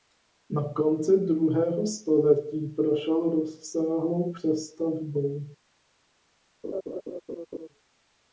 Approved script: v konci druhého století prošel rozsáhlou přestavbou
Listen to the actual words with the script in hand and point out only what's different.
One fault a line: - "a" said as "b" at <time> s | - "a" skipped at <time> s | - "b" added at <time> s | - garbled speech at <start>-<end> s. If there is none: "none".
- "v" said as "na" at 0.5 s